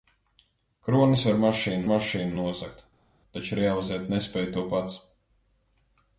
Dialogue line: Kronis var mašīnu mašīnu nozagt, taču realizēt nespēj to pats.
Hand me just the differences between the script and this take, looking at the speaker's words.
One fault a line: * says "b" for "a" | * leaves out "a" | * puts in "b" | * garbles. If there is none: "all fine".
all fine